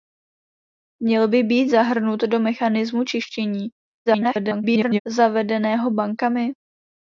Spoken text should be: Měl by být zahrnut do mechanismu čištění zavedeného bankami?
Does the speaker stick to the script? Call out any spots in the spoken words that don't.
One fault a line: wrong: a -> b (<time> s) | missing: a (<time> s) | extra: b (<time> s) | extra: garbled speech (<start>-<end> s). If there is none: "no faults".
extra: garbled speech (4.1-5.0 s)